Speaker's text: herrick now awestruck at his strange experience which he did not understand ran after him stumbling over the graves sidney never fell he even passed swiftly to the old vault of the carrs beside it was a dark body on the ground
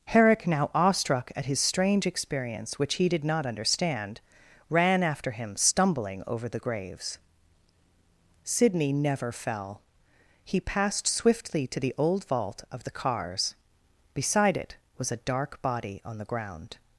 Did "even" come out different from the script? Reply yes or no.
yes